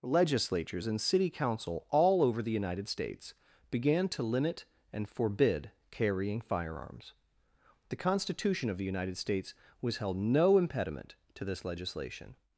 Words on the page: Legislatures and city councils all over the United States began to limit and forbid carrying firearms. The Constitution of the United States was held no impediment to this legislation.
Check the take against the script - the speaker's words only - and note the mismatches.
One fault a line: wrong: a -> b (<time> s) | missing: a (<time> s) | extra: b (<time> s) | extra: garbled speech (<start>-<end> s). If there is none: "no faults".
wrong: councils -> council (1.3 s)